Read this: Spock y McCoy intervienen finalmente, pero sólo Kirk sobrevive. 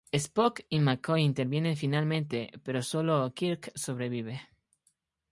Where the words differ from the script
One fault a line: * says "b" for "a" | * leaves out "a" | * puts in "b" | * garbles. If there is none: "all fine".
all fine